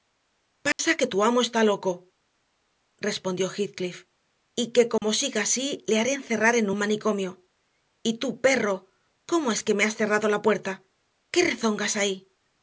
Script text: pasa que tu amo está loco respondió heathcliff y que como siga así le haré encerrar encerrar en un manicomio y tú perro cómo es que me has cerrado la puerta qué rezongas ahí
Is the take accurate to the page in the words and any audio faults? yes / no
no